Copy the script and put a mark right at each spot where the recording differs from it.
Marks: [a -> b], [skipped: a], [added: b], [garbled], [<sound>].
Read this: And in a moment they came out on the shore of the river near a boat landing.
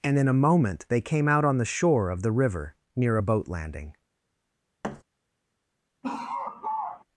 And in a moment they came out on the shore of the river near a boat landing. [thud] [laugh]